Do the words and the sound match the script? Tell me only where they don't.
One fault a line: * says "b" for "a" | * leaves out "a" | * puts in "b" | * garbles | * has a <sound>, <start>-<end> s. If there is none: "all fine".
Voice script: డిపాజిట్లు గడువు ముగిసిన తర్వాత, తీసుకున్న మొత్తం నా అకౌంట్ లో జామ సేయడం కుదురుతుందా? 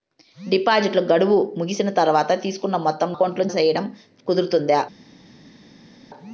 * leaves out "నా"
* leaves out "జామ"